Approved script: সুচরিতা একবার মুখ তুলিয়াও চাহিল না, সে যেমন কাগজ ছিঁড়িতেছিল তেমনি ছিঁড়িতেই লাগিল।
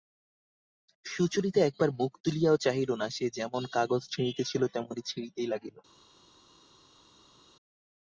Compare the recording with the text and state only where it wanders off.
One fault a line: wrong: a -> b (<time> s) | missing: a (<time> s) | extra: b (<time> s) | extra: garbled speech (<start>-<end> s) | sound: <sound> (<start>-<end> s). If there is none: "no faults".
no faults